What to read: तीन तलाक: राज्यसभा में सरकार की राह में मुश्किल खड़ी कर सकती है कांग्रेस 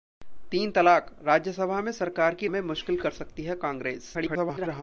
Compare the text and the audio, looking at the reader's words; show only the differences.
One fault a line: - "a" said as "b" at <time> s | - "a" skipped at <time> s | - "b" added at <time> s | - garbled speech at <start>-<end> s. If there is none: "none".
- "राह" skipped at 2.5 s
- "खड़ी" skipped at 3.0 s
- garbled speech at 4.1-4.8 s